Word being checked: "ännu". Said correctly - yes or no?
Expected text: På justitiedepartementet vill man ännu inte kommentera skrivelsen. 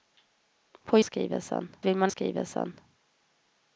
no